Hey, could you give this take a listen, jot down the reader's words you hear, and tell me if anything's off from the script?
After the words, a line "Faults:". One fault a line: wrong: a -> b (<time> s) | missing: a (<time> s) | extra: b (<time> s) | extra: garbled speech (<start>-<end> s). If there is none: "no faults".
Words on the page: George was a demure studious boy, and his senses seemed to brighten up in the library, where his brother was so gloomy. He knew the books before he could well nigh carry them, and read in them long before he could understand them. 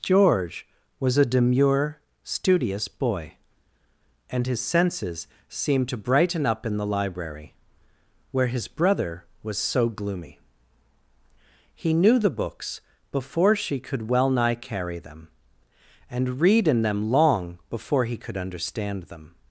George was a demure studious boy, and his senses seemed to brighten up in the library, where his brother was so gloomy. He knew the books before she could well nigh carry them, and read in them long before he could understand them.
Faults:
wrong: he -> she (13.6 s)